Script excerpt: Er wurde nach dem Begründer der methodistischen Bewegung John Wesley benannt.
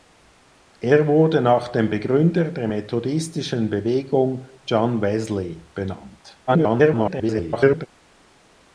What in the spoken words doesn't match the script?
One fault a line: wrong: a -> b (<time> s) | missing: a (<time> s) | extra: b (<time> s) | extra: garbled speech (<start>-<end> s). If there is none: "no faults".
extra: garbled speech (6.5-7.9 s)